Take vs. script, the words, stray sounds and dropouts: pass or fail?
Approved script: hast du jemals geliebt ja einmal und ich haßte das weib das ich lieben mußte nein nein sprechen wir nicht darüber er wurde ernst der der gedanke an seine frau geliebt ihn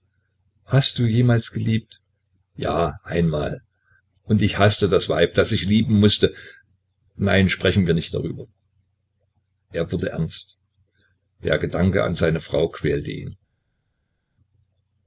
fail